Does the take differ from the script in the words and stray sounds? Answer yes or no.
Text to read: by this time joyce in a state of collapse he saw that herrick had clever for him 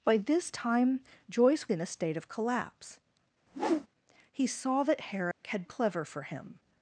yes